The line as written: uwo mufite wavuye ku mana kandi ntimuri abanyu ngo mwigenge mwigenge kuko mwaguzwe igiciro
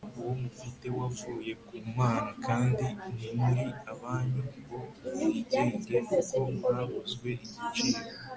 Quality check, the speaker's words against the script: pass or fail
fail